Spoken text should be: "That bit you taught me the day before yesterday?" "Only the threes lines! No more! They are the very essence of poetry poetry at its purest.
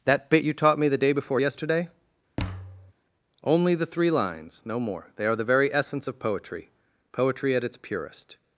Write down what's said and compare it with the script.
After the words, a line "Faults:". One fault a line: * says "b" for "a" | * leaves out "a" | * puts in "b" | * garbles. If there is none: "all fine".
"That bit you taught me the day before yesterday?" "Only the three lines! No more! They are the very essence of poetry poetry at its purest.
Faults:
* says "three" for "threes"